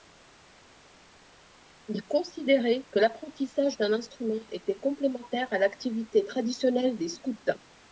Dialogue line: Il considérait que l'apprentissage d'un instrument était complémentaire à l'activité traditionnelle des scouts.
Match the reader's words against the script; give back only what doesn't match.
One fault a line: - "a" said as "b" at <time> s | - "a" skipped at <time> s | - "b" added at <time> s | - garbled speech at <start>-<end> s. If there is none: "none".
none